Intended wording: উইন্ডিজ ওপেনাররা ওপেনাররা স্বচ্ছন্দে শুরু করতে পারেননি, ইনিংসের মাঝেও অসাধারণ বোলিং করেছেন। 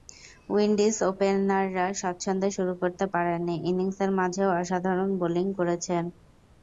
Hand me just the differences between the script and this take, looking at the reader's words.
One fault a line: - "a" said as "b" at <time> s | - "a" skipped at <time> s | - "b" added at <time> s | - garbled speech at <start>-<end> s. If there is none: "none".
- "ওপেনাররা" skipped at 1.9 s